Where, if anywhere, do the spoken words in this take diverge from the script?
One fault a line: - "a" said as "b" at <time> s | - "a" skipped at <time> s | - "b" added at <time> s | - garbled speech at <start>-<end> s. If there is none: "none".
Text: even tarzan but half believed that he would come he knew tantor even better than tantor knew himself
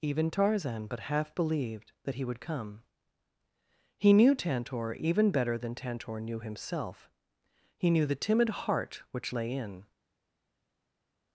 - "he knew the timid heart which lay in" added at 7.8 s